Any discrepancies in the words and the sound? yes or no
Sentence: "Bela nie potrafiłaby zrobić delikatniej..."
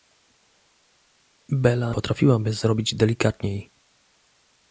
yes